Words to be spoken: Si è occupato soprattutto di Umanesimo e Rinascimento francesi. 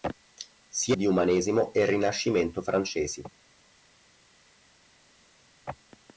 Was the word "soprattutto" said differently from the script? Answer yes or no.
yes